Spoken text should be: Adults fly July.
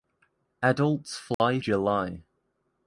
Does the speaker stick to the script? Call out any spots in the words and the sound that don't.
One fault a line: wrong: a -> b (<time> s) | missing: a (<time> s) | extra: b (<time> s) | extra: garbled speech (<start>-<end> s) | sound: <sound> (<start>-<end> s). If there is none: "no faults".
sound: dropout (1.3-1.4 s)